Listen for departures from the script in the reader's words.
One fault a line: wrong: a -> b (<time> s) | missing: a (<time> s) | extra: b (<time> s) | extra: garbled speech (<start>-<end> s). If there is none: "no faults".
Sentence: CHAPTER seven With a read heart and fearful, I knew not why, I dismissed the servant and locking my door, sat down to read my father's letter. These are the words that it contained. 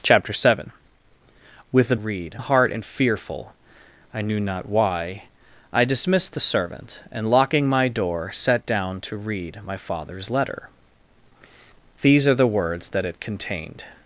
no faults